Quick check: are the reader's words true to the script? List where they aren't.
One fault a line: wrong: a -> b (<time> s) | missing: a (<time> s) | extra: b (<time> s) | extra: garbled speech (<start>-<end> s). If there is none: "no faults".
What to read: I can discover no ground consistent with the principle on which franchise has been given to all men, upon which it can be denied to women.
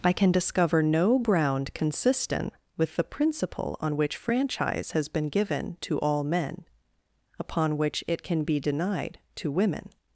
no faults